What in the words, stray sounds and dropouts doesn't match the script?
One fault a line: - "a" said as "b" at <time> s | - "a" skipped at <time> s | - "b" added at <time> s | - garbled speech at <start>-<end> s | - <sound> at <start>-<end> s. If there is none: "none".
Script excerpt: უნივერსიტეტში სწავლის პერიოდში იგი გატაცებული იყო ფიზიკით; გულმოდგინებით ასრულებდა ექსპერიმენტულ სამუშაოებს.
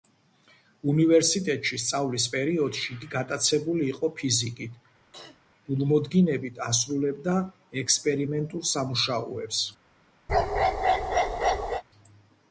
- throat clearing at 5.1-5.4 s
- bark at 10.3-11.8 s